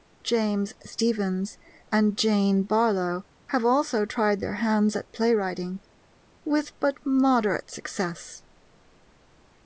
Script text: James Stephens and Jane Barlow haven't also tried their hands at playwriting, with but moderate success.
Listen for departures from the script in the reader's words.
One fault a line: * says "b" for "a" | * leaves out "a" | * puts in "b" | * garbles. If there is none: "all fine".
* says "have" for "haven't"